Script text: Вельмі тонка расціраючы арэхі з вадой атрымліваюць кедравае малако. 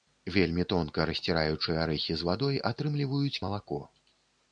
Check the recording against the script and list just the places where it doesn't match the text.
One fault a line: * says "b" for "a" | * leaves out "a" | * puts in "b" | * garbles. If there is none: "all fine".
* leaves out "кедравае"